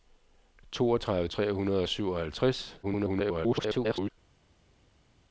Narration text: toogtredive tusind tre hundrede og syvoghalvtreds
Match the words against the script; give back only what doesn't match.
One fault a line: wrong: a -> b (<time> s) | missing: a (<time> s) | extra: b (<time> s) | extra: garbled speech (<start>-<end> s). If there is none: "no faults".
missing: tusind (1.3 s)
extra: garbled speech (2.8-4.1 s)